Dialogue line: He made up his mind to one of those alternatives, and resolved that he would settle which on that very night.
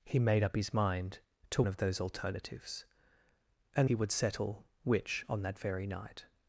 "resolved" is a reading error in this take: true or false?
true